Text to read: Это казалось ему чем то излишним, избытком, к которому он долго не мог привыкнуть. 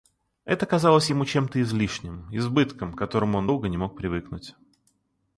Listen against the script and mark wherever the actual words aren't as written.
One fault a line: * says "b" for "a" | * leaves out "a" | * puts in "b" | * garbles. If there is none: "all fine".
all fine